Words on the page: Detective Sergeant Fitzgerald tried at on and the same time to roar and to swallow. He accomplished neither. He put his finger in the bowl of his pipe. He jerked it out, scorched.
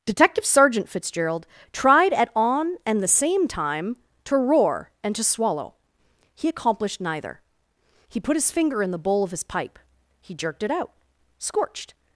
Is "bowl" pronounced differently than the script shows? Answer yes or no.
no